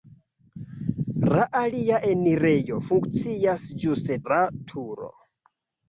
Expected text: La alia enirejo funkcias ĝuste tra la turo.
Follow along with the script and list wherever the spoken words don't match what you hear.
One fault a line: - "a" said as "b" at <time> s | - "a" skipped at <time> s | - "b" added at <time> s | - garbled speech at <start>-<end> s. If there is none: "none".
- "tra" skipped at 4.2 s